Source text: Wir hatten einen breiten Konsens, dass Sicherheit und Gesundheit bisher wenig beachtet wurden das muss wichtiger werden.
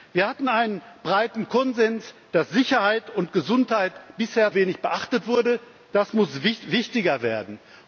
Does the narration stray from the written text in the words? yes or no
no